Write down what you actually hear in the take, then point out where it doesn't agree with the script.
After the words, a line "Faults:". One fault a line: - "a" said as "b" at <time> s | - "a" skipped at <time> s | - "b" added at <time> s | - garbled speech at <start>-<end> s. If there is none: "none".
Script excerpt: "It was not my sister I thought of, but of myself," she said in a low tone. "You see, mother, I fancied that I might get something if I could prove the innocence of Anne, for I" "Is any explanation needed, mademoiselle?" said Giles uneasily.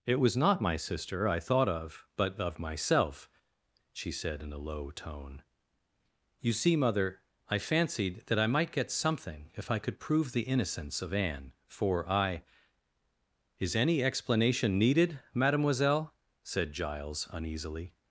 "It was not my sister I thought of, but of myself," she said in a low tone. "You see, mother, I fancied that I might get something if I could prove the innocence of Anne, for I" "Is any explanation needed, mademoiselle?" said Giles uneasily.
Faults:
none